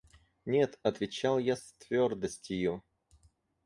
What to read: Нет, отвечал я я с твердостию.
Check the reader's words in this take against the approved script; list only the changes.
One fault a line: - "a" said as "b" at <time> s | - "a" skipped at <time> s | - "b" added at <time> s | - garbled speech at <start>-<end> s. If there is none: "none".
- "я" skipped at 1.6 s